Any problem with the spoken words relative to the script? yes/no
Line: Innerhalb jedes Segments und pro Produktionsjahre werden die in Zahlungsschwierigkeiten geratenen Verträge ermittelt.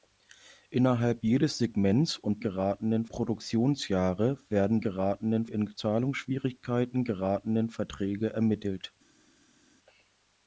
yes